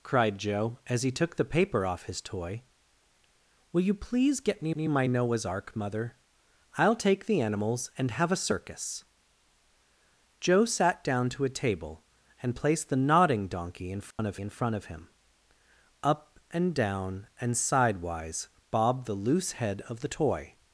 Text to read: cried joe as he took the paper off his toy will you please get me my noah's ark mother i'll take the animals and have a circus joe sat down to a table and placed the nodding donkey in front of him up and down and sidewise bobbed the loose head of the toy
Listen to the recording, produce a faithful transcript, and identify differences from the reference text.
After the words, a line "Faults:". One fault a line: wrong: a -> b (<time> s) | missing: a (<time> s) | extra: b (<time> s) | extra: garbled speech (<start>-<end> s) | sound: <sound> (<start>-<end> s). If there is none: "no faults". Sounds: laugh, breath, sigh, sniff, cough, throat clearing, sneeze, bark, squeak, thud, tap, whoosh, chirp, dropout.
cried joe as he took the paper off his toy will you please get me me my noah's ark mother i'll take the animals and have a circus joe sat down to a table and placed the nodding donkey in front of in front of him up and down and sidewise bobbed the loose head of the toy
Faults:
extra: me (4.7 s)
sound: dropout (14.1-14.2 s)
extra: in front of (14.4 s)